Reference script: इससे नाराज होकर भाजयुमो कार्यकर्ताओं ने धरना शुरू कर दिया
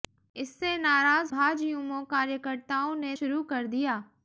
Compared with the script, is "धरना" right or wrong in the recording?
wrong